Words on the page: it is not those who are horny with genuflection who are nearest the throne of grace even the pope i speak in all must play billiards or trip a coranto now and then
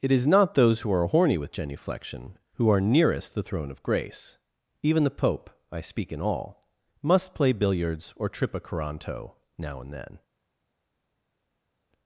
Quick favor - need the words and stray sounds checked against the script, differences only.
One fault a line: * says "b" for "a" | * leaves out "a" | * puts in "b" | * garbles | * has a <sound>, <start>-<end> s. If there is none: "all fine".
all fine